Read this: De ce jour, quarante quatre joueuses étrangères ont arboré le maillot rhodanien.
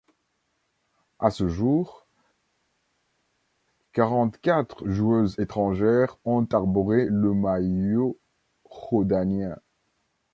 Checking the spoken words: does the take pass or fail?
fail